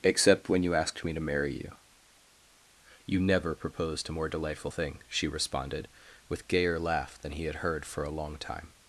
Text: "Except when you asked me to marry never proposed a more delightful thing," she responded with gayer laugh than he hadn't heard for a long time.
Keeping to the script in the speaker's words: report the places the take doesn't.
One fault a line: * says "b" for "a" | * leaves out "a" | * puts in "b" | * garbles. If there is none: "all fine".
* puts in "you you"
* says "had" for "hadn't"